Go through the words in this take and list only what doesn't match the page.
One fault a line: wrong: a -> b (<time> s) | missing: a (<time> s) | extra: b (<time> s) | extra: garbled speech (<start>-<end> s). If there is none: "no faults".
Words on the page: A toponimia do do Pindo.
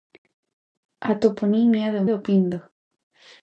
no faults